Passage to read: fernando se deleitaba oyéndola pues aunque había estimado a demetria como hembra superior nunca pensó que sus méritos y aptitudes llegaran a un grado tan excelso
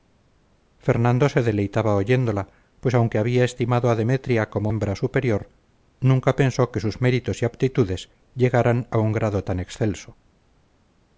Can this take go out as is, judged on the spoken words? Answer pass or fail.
pass